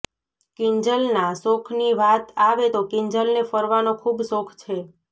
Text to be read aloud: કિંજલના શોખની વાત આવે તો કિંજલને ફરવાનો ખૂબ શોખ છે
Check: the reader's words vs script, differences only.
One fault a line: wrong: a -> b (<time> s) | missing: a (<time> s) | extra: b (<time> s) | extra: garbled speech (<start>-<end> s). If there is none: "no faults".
no faults